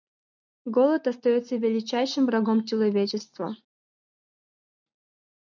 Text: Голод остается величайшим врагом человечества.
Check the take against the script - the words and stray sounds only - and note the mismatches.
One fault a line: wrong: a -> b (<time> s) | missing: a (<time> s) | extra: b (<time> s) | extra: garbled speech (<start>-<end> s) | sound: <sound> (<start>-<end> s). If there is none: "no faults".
no faults